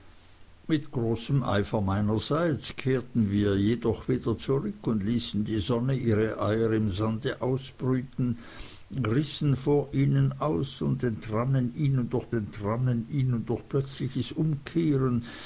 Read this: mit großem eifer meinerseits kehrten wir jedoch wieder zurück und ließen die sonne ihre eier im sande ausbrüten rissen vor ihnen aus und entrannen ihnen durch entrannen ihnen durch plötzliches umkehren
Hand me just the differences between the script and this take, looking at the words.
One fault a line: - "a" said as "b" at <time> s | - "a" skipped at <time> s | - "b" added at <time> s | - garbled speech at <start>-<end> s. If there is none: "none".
none